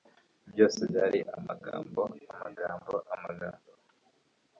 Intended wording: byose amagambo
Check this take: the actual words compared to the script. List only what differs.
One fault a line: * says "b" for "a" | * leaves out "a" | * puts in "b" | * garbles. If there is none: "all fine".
* puts in "byari amagambo amagambo"